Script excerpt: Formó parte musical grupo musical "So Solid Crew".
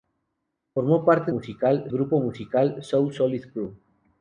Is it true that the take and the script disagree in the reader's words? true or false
false